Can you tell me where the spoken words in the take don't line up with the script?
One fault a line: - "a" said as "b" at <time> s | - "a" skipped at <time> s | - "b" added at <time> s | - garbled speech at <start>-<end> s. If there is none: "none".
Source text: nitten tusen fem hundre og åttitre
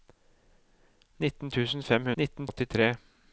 - "hundre" said as "nitten" at 2.2 s